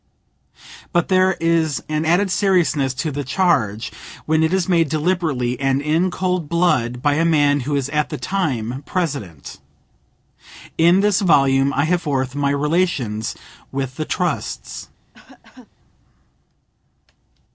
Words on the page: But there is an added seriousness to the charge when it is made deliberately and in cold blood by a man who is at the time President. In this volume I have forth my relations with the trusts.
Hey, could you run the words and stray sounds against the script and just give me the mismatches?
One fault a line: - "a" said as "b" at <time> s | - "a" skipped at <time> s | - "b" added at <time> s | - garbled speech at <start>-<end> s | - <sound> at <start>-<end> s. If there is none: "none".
- cough at 15.1-15.7 s